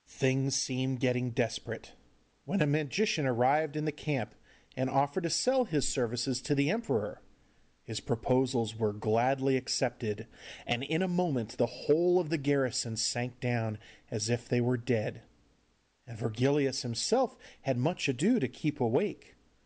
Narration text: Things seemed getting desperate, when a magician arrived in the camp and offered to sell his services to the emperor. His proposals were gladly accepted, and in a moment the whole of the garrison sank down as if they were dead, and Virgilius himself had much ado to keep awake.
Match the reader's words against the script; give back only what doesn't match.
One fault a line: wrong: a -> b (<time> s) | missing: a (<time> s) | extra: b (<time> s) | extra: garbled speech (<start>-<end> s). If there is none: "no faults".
no faults